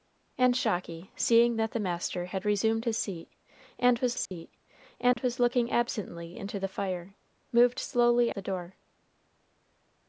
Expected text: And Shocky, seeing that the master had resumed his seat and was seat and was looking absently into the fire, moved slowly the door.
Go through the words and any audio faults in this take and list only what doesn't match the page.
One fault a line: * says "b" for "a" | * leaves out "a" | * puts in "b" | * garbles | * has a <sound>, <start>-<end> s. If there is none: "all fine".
* has a dropout, 4.3-4.3 s
* has a dropout, 5.1-5.2 s